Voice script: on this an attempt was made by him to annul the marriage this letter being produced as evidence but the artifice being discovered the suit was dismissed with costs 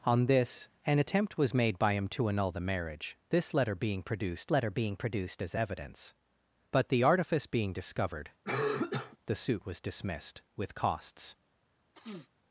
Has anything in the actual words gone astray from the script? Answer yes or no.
yes